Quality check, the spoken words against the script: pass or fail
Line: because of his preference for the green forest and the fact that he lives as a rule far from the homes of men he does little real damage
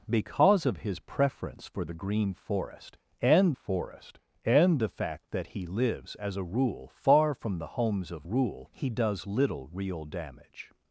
fail